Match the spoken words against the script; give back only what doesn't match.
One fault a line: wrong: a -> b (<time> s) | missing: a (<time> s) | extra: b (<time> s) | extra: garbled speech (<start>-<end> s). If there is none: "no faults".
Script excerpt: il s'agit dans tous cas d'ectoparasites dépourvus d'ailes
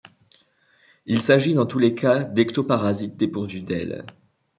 extra: les (1.8 s)